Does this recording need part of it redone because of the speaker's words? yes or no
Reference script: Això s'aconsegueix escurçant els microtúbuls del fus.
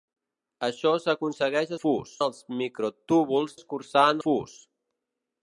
yes